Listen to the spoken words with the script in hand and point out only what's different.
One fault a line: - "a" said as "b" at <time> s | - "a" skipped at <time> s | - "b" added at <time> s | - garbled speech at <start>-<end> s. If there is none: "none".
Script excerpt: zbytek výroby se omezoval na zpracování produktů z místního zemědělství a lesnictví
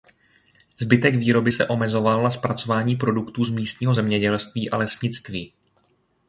none